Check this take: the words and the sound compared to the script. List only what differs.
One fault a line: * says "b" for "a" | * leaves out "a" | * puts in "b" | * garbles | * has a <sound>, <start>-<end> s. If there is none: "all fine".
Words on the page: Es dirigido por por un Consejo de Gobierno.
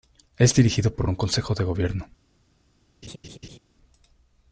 * has a laugh, 3.0-3.6 s